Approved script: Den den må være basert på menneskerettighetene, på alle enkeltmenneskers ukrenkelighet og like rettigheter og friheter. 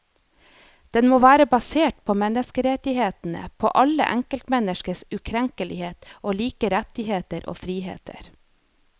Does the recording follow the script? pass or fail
fail